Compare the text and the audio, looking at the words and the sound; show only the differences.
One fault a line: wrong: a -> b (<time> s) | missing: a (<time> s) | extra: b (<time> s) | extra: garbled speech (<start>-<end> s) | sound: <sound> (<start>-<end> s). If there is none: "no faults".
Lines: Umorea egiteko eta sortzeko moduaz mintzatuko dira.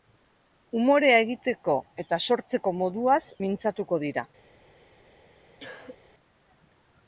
sound: cough (5.6-6.0 s)